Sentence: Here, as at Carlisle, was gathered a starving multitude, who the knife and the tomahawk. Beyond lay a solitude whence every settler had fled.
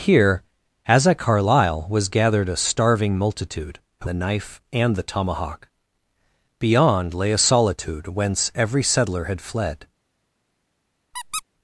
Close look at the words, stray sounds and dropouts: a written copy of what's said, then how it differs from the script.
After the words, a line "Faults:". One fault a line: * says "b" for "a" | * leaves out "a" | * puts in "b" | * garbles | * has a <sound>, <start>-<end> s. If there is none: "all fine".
Here, as at Carlisle, was gathered a starving multitude, who the knife and the tomahawk. Beyond lay a solitude whence every settler had fled.
Faults:
* has a squeak, 11.1-11.4 s